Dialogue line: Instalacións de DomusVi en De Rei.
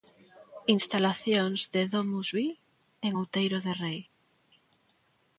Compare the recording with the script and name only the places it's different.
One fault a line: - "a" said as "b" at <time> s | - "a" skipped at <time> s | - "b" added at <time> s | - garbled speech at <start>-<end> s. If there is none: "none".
- "Outeiro" added at 3.2 s